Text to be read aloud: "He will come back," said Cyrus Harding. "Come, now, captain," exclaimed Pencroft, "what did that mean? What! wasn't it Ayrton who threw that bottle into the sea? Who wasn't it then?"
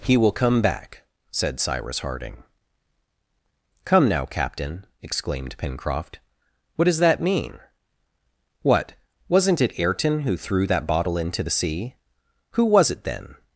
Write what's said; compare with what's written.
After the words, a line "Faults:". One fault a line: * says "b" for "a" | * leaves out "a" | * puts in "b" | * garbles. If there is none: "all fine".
"He will come back," said Cyrus Harding. "Come, now, captain," exclaimed Pencroft, "what does that mean? What! wasn't it Ayrton who threw that bottle into the sea? Who was it then?"
Faults:
* says "does" for "did"
* says "was" for "wasn't"